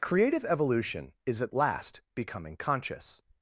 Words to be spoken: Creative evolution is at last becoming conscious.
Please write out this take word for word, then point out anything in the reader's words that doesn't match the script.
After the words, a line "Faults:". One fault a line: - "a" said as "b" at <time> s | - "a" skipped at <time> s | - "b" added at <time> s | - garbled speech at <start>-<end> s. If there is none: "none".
Creative evolution is at last becoming conscious.
Faults:
none